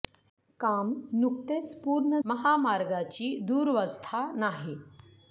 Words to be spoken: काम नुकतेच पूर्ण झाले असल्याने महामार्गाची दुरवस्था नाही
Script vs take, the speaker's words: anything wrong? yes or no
yes